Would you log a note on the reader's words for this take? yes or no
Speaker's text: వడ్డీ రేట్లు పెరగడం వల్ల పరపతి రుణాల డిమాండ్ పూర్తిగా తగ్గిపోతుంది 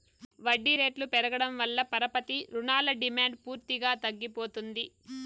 no